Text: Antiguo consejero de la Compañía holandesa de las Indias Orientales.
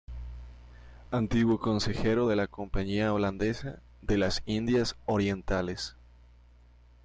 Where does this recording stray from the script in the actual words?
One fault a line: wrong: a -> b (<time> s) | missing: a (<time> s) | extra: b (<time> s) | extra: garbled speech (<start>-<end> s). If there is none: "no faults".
no faults